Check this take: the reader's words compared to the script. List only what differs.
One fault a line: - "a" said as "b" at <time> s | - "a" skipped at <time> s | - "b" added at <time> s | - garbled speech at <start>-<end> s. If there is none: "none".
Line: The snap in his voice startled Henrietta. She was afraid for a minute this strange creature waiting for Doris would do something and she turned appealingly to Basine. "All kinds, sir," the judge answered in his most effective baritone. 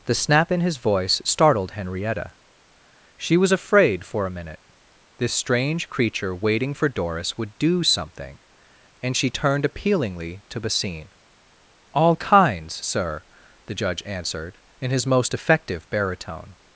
none